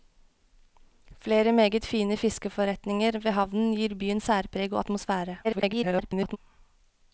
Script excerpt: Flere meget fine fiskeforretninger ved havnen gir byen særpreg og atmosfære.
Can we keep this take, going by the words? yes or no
no